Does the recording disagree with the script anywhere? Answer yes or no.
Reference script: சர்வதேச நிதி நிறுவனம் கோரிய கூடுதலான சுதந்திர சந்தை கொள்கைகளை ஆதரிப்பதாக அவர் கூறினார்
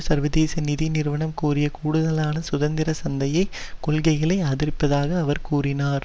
no